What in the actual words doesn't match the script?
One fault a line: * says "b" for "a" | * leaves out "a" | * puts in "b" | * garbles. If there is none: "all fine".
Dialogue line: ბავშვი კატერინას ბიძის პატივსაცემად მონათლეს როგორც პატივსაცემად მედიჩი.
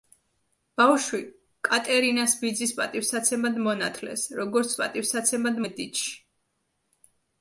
all fine